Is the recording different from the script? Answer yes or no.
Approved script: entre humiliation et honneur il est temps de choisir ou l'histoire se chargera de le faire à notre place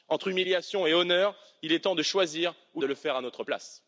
yes